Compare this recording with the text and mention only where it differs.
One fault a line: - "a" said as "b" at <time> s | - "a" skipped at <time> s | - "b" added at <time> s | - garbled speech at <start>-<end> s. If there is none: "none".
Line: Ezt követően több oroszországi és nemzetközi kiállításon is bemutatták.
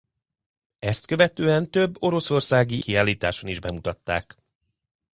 - "és nemzetközi" skipped at 2.8 s